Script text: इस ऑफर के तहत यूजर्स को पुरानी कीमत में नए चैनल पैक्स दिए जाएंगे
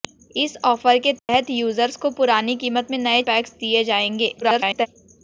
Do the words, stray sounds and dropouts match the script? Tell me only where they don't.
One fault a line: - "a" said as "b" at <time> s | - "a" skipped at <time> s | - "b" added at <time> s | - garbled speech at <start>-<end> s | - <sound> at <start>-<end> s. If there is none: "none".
- dropout at 1.2-1.3 s
- "चैनल" skipped at 3.2 s
- garbled speech at 4.4-4.9 s